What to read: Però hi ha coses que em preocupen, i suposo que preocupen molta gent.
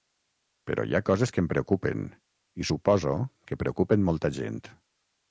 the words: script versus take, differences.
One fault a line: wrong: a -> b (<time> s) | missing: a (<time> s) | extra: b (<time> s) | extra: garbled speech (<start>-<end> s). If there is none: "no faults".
no faults